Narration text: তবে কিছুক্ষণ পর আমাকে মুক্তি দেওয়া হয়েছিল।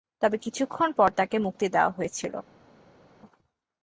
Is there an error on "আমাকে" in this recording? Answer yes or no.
yes